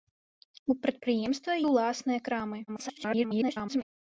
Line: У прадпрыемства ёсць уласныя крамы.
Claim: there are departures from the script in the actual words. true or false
true